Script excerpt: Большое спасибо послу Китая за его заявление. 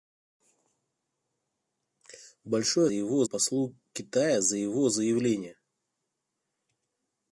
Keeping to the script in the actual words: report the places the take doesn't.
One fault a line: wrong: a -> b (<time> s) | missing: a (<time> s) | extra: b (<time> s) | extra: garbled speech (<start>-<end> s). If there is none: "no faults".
wrong: спасибо -> его (2.9 s)